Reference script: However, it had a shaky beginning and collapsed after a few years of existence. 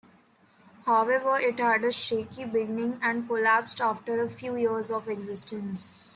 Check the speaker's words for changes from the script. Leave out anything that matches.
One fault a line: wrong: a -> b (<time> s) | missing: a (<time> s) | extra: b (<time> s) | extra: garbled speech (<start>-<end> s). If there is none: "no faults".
no faults